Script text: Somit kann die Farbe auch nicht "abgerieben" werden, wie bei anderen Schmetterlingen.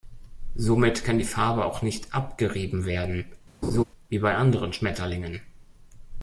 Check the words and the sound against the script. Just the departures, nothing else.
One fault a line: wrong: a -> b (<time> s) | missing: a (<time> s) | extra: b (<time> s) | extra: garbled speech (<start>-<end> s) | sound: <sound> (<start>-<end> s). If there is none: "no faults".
sound: laugh (3.6-3.8 s)